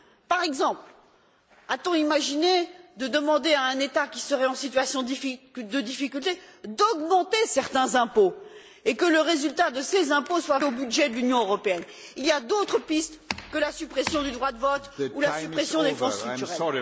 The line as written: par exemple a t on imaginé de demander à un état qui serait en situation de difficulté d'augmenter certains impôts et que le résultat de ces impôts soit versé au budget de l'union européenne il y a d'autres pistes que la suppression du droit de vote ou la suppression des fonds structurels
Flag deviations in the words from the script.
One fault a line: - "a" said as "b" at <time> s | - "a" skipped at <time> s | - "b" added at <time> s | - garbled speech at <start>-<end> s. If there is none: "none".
- "versé" skipped at 10.6 s